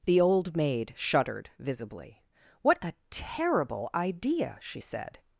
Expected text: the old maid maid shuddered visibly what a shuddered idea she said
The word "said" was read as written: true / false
true